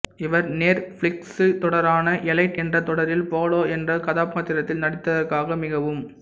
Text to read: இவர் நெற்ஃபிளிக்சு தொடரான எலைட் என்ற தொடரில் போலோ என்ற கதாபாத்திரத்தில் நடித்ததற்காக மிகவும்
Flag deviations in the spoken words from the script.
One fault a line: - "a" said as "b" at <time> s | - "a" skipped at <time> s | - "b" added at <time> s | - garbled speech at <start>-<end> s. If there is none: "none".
none